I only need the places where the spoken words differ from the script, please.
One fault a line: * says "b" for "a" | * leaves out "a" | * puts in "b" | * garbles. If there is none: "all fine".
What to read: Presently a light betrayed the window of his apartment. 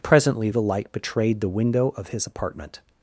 * says "the" for "a"